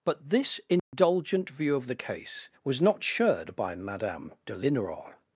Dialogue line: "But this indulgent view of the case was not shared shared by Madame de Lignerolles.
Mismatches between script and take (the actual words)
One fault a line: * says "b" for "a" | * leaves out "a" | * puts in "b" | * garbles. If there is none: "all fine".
* leaves out "shared"